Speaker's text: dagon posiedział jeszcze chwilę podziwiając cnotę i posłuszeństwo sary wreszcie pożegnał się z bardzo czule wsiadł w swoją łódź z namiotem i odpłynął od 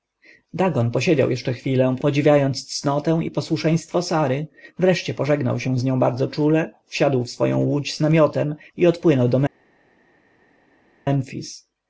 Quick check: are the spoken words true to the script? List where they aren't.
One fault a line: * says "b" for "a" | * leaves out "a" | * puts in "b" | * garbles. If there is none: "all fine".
* puts in "nią"
* says "do" for "od"